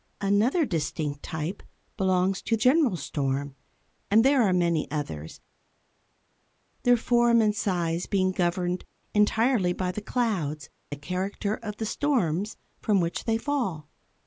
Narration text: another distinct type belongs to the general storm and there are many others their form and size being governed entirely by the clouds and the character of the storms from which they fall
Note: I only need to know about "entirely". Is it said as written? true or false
true